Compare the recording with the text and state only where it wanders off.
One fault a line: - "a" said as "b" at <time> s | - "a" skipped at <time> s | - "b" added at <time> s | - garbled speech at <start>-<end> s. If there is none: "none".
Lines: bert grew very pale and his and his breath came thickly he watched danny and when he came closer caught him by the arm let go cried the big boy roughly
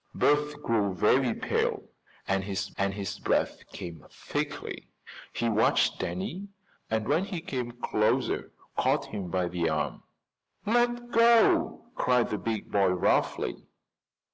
none